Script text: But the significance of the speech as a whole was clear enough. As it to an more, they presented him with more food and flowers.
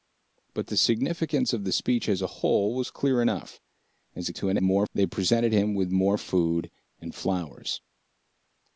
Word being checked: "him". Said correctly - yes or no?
yes